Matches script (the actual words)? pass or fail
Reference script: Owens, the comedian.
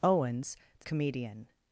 pass